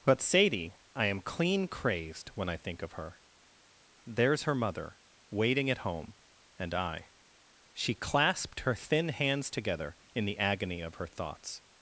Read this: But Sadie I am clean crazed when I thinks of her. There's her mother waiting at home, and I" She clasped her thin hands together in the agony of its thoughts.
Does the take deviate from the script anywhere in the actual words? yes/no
yes